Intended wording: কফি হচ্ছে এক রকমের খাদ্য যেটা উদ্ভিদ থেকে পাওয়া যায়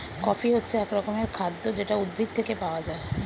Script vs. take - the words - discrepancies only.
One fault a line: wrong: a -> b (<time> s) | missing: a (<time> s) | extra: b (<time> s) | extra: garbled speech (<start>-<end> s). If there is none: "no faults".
no faults